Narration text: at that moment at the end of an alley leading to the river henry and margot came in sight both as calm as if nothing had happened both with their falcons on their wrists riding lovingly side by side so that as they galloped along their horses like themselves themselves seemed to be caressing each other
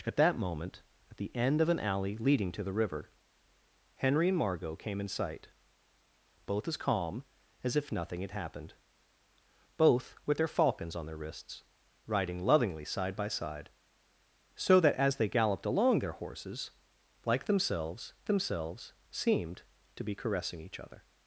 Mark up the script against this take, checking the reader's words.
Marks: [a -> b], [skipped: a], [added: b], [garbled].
at that moment at the end of an alley leading to the river henry and margot came in sight both as calm as if nothing had happened both with their falcons on their wrists riding lovingly side by side so that as they galloped along their horses like themselves themselves seemed to be caressing each other